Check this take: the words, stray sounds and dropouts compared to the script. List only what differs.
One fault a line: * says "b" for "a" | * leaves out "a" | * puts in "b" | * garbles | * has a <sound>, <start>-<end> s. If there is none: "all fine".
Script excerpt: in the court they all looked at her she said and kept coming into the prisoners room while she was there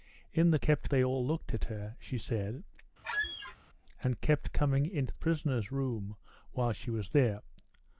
* says "kept" for "court"
* has a squeak, 3.0-3.6 s
* leaves out "the"